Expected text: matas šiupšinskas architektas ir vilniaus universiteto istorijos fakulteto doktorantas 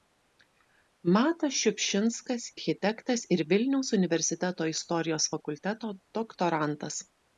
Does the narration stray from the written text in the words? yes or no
no